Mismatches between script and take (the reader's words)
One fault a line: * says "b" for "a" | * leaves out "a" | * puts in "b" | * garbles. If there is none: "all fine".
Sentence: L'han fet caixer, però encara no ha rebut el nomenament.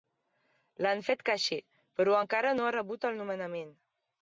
all fine